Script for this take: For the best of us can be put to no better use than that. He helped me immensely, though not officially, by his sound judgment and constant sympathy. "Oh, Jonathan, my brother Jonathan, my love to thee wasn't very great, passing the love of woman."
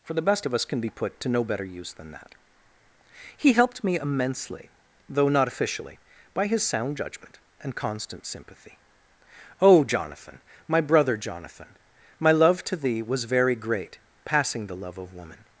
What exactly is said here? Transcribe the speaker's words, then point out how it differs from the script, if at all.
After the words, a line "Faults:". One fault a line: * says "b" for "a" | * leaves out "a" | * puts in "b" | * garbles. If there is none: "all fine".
For the best of us can be put to no better use than that. He helped me immensely, though not officially, by his sound judgment and constant sympathy. "Oh, Jonathan, my brother Jonathan, my love to thee was very great, passing the love of woman."
Faults:
* says "was" for "wasn't"